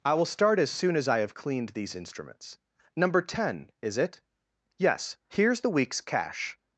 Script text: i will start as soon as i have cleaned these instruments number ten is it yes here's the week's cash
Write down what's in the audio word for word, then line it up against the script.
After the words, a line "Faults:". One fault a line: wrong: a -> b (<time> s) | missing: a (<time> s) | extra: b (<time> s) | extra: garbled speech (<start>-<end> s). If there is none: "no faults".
i will start as soon as i have cleaned these instruments number ten is it yes here's the week's cash
Faults:
no faults